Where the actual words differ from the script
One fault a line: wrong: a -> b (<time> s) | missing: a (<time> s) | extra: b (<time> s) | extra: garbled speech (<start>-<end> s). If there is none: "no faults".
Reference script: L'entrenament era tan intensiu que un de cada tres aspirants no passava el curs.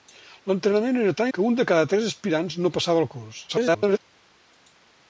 missing: intensiu (1.3 s)
extra: garbled speech (3.5-4.0 s)